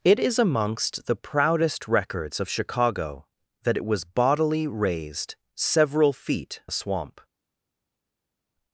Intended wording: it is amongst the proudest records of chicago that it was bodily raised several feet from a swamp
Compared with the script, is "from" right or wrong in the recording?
wrong